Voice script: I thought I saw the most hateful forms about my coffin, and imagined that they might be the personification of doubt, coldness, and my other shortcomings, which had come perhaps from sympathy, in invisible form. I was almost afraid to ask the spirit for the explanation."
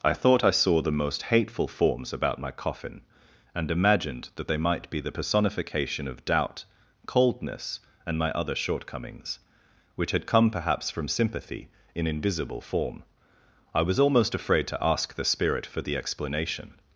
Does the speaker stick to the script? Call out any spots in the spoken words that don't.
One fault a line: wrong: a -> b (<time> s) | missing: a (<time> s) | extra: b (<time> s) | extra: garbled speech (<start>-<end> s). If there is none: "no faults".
no faults